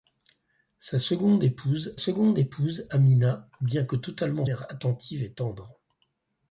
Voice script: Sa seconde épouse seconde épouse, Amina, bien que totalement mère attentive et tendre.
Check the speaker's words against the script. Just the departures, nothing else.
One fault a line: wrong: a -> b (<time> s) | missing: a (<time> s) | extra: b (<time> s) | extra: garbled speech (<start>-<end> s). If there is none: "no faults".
no faults